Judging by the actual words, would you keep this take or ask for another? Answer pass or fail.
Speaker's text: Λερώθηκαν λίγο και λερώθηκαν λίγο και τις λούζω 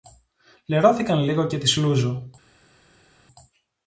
fail